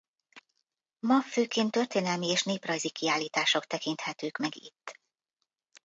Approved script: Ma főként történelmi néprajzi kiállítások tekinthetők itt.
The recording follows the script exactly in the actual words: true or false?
false